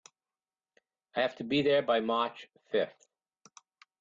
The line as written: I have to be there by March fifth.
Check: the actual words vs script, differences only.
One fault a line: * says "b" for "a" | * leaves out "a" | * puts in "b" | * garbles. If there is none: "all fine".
all fine